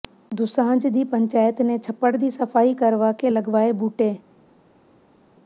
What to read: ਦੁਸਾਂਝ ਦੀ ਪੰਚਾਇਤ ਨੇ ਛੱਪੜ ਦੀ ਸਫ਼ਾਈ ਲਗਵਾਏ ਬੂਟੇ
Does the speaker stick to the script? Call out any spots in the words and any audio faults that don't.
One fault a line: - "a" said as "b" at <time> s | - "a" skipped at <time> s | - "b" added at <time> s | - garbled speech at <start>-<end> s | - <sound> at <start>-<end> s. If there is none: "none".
- "ਕਰਵਾ ਕੇ" added at 2.7 s